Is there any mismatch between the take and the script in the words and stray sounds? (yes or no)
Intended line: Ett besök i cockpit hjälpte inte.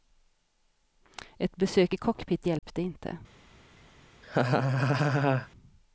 yes